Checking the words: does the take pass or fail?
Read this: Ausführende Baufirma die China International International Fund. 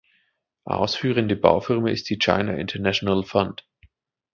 fail